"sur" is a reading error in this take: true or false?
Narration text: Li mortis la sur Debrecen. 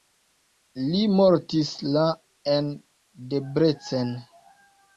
true